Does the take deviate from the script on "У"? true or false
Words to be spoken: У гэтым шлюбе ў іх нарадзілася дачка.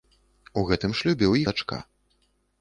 false